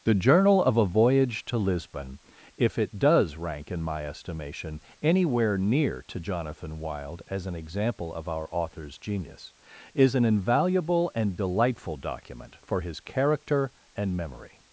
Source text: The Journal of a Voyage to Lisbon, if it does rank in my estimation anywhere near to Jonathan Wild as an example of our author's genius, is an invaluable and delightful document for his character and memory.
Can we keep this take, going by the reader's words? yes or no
yes